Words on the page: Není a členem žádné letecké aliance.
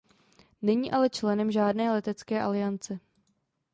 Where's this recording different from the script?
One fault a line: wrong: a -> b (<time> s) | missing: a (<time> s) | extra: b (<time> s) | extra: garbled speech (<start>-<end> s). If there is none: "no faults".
wrong: a -> ale (0.9 s)